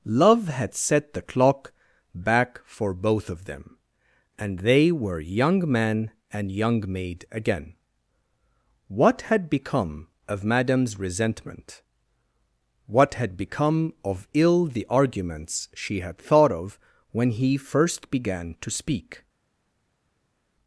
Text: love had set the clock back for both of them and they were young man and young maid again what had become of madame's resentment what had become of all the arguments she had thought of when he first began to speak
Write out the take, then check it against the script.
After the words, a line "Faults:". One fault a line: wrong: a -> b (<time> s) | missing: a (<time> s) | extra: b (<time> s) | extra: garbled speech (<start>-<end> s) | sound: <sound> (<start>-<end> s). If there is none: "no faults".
love had set the clock back for both of them and they were young man and young maid again what had become of madame's resentment what had become of ill the arguments she had thought of when he first began to speak
Faults:
wrong: all -> ill (14.3 s)